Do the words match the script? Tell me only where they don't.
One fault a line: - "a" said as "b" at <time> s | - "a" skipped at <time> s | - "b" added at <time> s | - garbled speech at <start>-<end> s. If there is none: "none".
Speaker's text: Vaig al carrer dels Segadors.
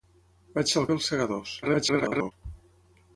- "carrer" skipped at 0.9 s
- garbled speech at 1.6-2.3 s